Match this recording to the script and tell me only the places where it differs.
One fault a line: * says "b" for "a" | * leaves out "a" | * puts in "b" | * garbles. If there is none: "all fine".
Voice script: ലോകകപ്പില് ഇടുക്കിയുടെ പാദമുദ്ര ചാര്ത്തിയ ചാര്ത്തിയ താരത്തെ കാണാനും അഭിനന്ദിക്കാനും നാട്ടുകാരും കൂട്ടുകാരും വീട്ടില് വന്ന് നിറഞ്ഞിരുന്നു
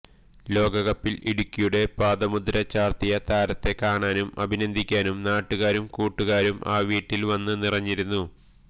* leaves out "ചാര്ത്തിയ"
* puts in "ആ"